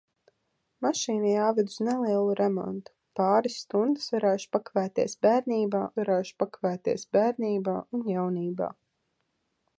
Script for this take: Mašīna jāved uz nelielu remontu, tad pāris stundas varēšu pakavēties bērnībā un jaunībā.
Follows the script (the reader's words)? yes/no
no